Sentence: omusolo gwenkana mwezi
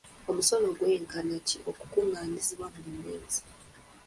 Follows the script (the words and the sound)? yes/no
no